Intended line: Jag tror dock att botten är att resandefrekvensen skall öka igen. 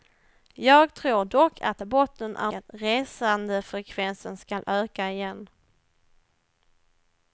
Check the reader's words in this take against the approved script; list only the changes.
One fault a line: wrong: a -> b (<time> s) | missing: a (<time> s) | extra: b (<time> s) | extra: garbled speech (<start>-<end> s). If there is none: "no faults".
no faults